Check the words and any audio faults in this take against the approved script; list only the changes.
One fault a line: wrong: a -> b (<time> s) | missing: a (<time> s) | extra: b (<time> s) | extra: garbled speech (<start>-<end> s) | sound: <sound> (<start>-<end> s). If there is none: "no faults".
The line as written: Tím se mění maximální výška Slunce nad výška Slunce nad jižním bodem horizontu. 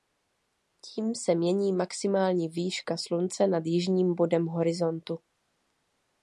missing: výška Slunce nad (3.6 s)